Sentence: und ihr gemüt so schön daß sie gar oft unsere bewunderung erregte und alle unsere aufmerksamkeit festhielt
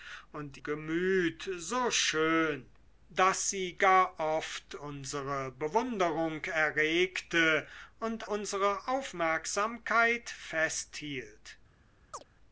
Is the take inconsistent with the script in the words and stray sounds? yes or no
yes